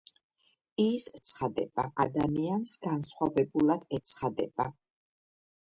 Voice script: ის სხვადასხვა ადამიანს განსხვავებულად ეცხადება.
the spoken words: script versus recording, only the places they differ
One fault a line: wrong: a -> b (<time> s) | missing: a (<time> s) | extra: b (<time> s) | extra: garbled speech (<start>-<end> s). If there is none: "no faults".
wrong: სხვადასხვა -> ეცხადება (1.2 s)